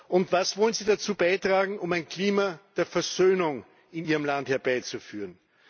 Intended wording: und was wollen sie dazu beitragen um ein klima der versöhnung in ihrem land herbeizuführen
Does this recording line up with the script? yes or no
yes